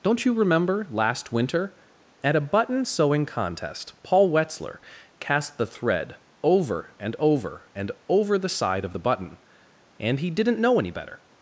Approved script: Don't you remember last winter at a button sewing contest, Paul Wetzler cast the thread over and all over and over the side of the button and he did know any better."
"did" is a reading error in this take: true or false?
true